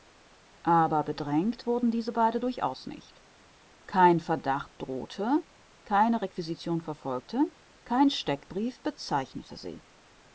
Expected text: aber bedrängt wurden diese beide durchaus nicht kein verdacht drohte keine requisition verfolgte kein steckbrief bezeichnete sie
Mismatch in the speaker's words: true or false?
false